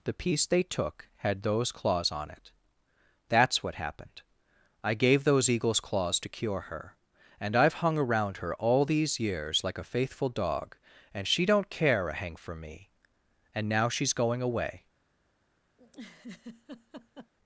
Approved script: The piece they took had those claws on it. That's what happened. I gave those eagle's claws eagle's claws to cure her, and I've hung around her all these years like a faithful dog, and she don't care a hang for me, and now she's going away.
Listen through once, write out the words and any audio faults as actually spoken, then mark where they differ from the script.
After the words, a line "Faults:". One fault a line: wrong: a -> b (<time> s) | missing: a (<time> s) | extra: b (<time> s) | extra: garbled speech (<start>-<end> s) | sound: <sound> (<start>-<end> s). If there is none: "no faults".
The piece they took had those claws on it. That's what happened. I gave those eagle's claws to cure her, and I've hung around her all these years like a faithful dog, and she don't care a hang for me, and now she's going away.
Faults:
missing: eagle's claws (6.2 s)
sound: laugh (15.8-17.3 s)